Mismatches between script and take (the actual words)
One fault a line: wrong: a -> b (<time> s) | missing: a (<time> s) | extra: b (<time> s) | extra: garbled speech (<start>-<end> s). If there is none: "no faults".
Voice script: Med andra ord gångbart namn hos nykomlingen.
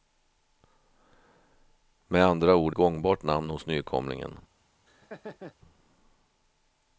no faults